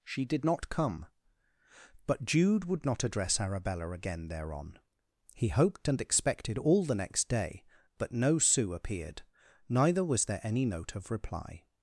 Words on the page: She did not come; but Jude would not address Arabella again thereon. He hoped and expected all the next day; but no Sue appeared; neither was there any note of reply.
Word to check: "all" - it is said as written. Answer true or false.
true